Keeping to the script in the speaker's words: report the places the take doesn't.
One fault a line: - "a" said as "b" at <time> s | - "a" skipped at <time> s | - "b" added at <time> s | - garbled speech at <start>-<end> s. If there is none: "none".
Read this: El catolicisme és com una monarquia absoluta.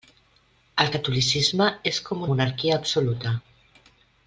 - "una" skipped at 2.2 s